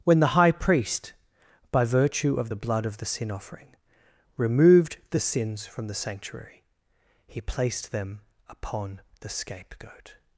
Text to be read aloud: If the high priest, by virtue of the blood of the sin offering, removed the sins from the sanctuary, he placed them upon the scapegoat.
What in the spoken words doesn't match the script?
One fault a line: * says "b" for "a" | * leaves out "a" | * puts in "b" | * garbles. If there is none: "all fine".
* says "When" for "If"